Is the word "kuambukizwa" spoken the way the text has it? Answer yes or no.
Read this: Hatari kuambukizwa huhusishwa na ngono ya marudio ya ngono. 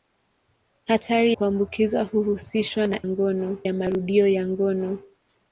yes